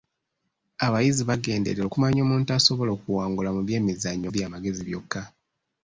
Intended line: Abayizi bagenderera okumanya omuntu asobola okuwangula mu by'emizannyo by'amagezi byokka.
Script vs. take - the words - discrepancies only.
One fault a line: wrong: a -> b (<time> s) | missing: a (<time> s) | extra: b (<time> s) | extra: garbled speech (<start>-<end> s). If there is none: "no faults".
no faults